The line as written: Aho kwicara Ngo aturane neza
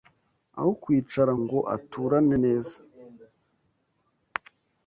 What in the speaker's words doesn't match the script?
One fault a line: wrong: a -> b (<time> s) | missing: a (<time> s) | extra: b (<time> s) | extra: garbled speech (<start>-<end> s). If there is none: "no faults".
no faults